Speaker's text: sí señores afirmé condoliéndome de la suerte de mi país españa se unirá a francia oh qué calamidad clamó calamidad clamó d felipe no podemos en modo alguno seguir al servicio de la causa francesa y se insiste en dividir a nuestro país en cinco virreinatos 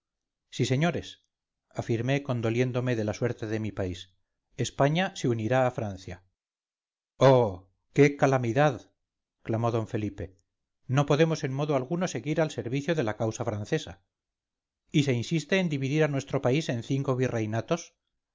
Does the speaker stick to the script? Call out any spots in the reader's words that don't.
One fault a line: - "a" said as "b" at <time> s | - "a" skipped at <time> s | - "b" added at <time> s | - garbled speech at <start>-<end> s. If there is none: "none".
- "calamidad clamó" skipped at 9.7 s